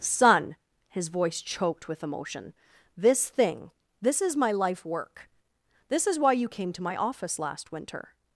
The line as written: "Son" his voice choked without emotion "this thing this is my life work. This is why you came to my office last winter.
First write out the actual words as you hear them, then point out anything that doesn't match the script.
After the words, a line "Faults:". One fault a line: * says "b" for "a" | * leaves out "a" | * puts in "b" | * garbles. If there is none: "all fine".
"Son" his voice choked with emotion "this thing this is my life work. This is why you came to my office last winter.
Faults:
* says "with" for "without"